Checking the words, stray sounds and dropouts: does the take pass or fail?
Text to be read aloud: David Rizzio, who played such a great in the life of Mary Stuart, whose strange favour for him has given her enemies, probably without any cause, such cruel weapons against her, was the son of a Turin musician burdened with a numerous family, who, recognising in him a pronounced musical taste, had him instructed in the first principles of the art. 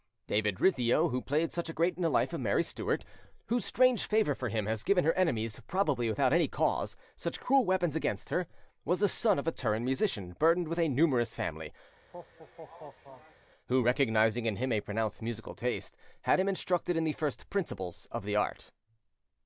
fail